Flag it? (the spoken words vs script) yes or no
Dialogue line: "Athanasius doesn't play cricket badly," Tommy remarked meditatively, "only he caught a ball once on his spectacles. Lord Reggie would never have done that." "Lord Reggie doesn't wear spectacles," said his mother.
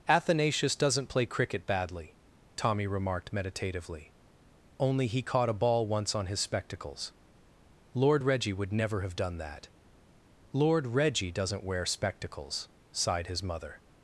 yes